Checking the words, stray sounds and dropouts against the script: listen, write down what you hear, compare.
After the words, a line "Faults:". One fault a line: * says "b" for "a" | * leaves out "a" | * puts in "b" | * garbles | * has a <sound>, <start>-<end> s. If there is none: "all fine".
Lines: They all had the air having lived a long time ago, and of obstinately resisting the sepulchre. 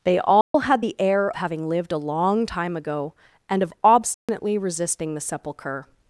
They all had the air having lived a long time ago, and of obstinately resisting the sepulchre.
Faults:
* has a dropout, 0.4-0.5 s
* has a dropout, 4.1-4.3 s